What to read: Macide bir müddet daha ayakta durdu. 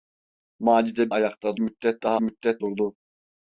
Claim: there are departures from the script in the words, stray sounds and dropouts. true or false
true